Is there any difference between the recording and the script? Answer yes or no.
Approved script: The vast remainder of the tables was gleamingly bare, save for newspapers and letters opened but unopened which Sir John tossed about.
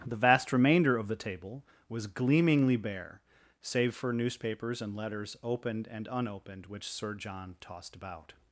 yes